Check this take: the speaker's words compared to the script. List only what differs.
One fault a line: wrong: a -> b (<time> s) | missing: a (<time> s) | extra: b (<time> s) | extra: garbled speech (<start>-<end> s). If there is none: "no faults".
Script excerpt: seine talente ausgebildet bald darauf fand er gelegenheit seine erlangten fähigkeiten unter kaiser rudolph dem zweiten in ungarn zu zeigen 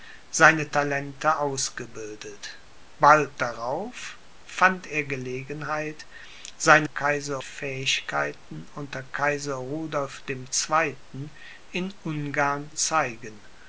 wrong: erlangten -> kaiser (6.8 s)
missing: zu (12.7 s)